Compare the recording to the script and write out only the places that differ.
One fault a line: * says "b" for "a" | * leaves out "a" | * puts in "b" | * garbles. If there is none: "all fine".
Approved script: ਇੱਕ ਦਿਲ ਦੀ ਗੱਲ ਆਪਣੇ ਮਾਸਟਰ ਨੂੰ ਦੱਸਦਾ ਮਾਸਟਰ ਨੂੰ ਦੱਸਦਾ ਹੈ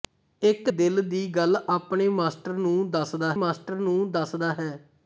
all fine